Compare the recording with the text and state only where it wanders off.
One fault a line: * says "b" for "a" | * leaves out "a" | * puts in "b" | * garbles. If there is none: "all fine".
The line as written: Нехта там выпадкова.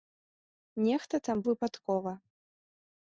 all fine